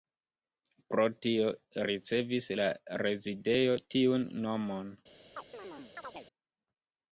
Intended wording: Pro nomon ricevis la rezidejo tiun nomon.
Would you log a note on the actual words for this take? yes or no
yes